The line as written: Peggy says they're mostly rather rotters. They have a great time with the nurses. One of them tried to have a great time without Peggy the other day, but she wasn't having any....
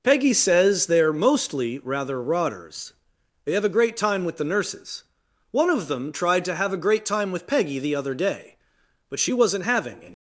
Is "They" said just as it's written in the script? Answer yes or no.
yes